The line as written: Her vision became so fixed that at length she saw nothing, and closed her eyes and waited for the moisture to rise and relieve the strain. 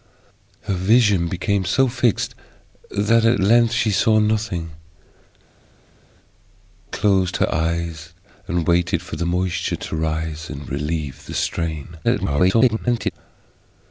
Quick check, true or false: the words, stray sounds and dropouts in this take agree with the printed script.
false